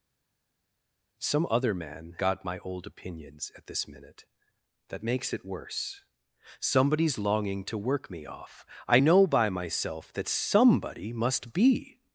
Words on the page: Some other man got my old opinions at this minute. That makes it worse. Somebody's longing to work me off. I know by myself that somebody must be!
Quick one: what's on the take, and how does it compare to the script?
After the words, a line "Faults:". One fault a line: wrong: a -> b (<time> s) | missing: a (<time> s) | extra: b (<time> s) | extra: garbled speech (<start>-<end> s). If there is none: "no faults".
Some other man got my old opinions at this minute. That makes it worse. Somebody's longing to work me off. I know by myself that somebody must be!
Faults:
no faults